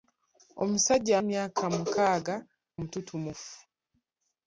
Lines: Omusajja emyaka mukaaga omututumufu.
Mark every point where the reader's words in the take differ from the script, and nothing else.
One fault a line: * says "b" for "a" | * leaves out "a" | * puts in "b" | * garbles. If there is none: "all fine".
all fine